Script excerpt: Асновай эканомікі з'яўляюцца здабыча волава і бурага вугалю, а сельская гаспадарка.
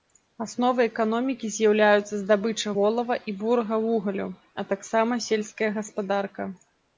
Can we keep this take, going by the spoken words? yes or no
no